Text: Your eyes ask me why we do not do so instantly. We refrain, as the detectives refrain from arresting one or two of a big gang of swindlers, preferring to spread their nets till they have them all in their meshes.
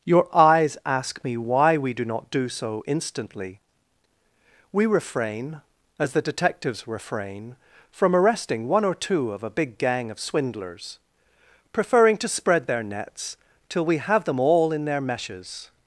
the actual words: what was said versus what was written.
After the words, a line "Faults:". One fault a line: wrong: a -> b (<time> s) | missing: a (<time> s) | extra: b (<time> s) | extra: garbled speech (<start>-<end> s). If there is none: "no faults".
Your eyes ask me why we do not do so instantly. We refrain, as the detectives refrain from arresting one or two of a big gang of swindlers, preferring to spread their nets till we have them all in their meshes.
Faults:
wrong: they -> we (13.8 s)